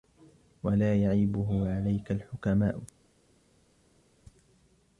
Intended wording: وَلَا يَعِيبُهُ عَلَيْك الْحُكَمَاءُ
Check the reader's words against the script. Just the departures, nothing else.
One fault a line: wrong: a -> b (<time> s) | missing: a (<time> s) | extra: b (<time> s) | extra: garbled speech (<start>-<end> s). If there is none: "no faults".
no faults